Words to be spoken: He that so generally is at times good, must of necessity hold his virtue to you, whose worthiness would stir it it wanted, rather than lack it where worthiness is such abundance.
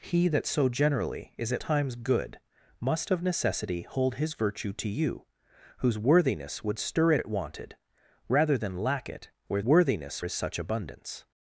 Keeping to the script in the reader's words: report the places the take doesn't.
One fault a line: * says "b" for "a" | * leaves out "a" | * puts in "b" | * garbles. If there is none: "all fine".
all fine